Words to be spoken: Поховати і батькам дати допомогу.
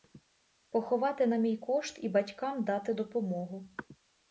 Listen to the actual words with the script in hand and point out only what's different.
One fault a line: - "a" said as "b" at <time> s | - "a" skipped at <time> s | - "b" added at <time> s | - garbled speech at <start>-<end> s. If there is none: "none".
- "на мій кошт" added at 1.3 s